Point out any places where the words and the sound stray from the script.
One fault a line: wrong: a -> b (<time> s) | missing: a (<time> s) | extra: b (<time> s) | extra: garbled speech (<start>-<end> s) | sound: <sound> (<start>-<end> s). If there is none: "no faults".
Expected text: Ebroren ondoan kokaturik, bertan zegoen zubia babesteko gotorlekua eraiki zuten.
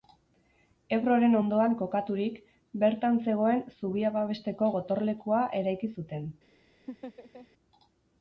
sound: laugh (6.9-7.5 s)